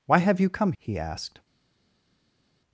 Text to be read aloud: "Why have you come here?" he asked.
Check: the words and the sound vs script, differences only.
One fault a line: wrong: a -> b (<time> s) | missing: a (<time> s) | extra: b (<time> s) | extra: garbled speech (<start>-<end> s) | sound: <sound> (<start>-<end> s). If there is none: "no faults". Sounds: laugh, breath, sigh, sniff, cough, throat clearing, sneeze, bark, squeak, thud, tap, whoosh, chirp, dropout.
missing: here (0.7 s)